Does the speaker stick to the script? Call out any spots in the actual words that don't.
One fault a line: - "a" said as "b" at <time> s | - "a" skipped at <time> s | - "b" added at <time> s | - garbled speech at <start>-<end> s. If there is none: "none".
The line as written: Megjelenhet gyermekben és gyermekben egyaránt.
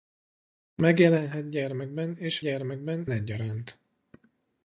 none